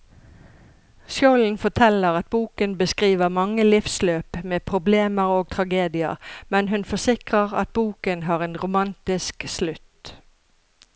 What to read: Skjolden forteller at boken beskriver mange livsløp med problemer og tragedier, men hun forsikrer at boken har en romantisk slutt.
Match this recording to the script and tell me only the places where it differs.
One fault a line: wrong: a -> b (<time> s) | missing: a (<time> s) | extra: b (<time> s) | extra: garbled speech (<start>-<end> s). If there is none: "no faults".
no faults